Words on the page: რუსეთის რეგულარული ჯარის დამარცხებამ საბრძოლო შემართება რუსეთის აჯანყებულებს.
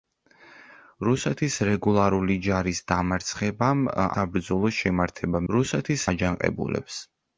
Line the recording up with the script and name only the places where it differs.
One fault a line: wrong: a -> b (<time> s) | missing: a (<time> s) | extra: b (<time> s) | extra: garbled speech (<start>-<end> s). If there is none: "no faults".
no faults